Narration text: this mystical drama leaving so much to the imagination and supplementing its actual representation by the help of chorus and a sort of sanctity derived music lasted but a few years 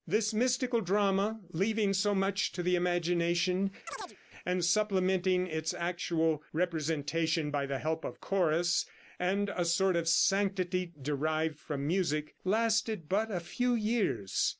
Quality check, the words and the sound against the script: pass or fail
fail